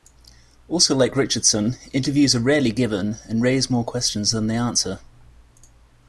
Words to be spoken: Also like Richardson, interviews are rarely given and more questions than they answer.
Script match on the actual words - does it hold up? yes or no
no